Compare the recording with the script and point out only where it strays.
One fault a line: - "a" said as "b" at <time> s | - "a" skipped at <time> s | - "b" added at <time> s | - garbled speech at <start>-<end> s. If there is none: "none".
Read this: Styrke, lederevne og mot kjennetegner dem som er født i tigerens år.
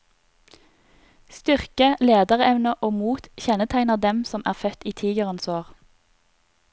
none